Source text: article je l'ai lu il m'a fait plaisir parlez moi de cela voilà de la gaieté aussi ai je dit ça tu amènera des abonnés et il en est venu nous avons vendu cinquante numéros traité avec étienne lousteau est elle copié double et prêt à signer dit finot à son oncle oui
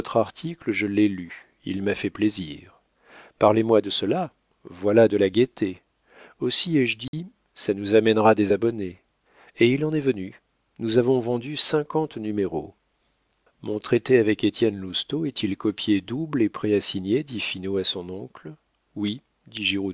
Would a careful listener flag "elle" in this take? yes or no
yes